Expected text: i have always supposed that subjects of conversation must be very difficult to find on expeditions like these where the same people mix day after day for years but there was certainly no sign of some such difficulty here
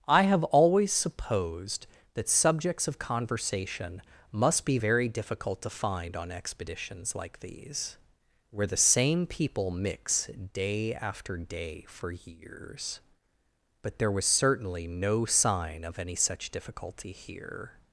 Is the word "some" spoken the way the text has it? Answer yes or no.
no